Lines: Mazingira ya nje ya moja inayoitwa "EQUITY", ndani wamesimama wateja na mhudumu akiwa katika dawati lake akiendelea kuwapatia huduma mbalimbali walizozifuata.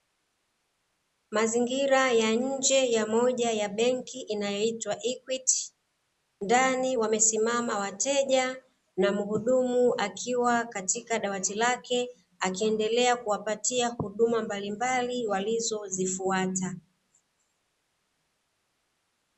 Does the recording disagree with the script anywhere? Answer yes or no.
yes